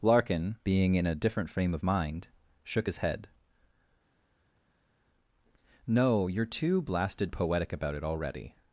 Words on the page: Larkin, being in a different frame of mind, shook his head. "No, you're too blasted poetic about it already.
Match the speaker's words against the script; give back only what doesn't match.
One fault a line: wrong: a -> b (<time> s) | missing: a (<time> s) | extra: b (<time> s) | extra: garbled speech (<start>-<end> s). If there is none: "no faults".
no faults